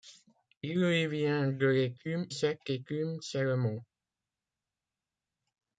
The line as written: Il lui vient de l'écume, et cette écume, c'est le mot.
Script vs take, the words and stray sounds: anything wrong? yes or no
yes